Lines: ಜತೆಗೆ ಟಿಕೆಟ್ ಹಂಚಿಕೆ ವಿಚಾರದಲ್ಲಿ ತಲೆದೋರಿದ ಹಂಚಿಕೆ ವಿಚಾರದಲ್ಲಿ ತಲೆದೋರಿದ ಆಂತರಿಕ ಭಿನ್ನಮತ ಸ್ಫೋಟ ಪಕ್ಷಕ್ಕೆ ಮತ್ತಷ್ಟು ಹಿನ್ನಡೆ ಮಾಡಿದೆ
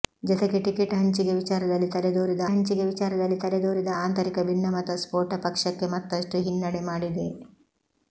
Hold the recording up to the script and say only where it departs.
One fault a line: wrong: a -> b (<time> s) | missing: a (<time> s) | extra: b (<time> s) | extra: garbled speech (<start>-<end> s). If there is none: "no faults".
no faults